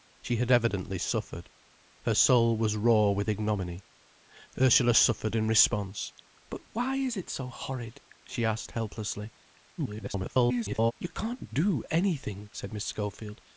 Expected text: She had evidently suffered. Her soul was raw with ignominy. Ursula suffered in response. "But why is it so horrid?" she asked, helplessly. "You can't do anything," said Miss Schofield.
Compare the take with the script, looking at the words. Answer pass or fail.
fail